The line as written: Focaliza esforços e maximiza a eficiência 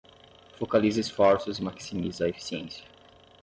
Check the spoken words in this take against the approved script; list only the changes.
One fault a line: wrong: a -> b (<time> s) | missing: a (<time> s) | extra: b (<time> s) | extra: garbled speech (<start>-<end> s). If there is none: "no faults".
no faults